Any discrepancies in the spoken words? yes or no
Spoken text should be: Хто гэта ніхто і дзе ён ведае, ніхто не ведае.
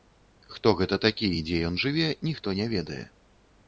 yes